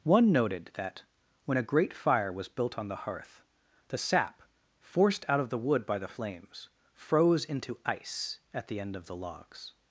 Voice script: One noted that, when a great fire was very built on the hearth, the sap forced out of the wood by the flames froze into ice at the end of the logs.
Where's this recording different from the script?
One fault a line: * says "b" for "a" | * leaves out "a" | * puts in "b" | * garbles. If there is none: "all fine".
* leaves out "very"